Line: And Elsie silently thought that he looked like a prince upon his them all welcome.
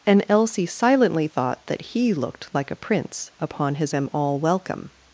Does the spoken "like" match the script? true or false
true